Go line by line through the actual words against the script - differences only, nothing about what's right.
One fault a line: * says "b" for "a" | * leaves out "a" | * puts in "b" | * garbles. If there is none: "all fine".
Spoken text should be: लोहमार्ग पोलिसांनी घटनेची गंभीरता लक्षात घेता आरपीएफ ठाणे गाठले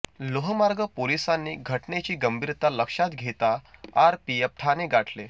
all fine